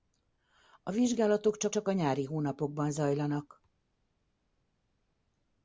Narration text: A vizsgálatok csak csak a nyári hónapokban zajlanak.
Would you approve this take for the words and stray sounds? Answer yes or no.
yes